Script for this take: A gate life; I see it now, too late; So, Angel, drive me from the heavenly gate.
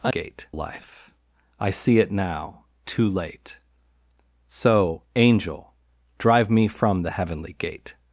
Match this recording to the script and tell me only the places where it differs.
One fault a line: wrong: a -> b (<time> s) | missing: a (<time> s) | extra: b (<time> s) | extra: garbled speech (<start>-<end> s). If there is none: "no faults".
no faults